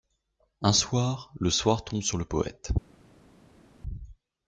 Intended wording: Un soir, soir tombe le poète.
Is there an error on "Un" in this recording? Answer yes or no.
no